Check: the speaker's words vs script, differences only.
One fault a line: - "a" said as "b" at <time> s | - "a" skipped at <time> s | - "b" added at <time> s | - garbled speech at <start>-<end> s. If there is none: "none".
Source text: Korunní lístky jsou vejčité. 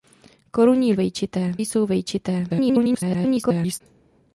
- "lístky" said as "vejčité" at 0.9 s
- garbled speech at 2.5-3.8 s